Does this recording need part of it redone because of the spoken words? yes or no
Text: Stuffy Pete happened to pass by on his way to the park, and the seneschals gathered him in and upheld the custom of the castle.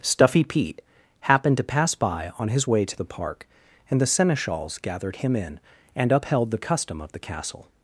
no